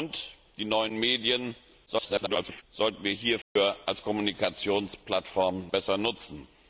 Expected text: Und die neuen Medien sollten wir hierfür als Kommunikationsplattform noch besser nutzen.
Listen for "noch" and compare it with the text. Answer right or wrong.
wrong